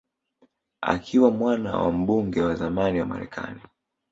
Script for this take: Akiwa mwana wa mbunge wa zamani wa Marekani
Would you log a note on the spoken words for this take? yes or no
no